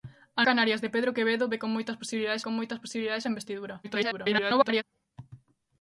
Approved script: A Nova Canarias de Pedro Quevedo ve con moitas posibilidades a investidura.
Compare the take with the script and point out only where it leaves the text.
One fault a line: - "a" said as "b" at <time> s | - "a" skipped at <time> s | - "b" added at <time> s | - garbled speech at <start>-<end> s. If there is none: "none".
- "Nova" skipped at 0.4 s
- "con moitas posibilidades" added at 2.4 s
- garbled speech at 3.8-4.8 s